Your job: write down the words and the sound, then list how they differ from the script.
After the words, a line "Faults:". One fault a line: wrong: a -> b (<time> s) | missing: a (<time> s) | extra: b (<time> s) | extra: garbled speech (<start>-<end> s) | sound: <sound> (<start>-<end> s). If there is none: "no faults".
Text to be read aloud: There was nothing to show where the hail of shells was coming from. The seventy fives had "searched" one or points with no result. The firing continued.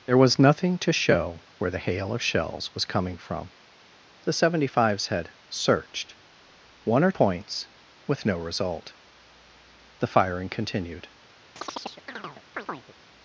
There was nothing to show where the hail of shells was coming from. The seventy fives had "searched" one or points with no result. The firing continued.
Faults:
sound: chirp (11.6-12.9 s)